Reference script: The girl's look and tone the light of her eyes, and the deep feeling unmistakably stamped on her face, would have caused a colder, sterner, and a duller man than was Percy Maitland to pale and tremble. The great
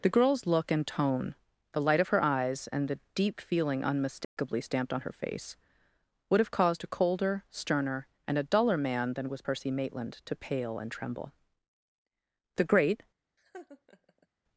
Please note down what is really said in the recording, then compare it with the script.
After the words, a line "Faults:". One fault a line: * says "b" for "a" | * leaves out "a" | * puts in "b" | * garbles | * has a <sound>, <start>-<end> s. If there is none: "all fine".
The girl's look and tone the light of her eyes, and the deep feeling unmistakably stamped on her face, would have caused a colder, sterner, and a duller man than was Percy Maitland to pale and tremble. The great
Faults:
* has a dropout, 4.2-4.4 s
* has a laugh, 13.4-14.3 s